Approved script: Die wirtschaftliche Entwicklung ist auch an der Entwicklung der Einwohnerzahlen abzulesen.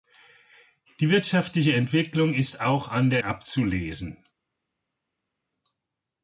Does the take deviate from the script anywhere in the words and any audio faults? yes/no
yes